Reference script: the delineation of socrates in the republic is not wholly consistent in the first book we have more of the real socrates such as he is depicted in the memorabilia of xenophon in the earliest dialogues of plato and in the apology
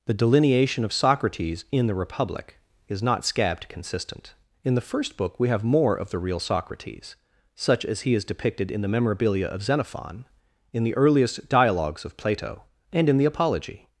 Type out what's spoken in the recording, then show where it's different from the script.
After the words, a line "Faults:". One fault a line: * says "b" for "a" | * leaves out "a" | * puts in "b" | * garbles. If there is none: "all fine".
the delineation of socrates in the republic is not scabbed consistent in the first book we have more of the real socrates such as he is depicted in the memorabilia of xenophon in the earliest dialogues of plato and in the apology
Faults:
* says "scabbed" for "wholly"